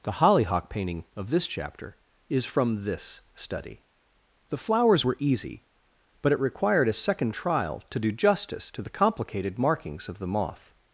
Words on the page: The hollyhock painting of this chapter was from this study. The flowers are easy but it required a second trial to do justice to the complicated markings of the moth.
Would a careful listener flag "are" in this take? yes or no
yes